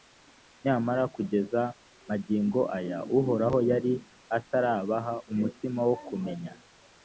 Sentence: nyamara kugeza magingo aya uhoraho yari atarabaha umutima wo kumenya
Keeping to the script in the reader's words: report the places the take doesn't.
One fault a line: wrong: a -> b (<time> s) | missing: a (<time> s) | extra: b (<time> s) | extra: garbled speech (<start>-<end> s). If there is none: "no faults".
no faults